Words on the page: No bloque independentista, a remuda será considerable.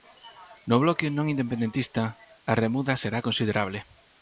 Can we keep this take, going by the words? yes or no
no